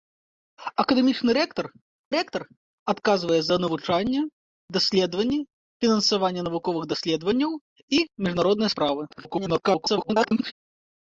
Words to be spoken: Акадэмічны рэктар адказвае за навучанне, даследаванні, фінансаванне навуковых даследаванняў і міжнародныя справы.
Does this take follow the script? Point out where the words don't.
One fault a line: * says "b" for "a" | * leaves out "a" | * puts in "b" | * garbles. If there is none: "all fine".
* puts in "рэктар"
* garbles